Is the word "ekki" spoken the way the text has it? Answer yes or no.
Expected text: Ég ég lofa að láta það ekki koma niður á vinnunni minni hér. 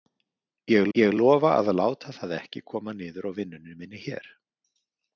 yes